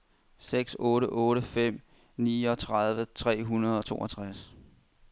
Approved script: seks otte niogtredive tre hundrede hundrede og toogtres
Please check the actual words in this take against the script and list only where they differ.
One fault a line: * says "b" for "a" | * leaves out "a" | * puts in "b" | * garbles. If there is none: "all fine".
* puts in "otte fem"
* leaves out "hundrede"